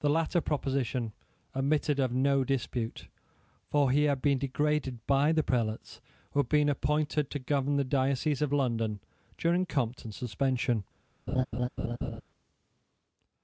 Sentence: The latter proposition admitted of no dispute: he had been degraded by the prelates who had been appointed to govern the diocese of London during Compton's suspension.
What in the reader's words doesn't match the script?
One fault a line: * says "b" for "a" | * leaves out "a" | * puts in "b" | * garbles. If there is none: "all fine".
* puts in "for"